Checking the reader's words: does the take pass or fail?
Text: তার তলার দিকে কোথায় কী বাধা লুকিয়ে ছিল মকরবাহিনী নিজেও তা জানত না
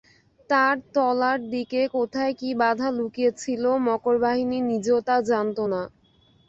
pass